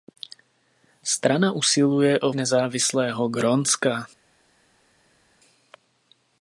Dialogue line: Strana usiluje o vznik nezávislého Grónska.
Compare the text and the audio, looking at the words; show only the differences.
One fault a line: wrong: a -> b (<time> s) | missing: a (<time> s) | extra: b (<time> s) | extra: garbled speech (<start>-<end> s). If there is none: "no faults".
missing: vznik (2.3 s)